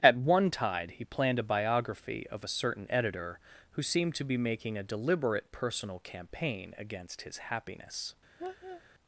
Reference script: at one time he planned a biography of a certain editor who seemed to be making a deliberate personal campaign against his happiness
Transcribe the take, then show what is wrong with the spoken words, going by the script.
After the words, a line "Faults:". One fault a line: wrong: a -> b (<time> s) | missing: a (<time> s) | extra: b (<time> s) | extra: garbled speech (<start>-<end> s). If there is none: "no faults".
at one tide he planned a biography of a certain editor who seemed to be making a deliberate personal campaign against his happiness
Faults:
wrong: time -> tide (0.5 s)